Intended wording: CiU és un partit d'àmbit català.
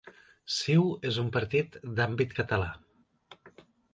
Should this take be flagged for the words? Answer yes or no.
no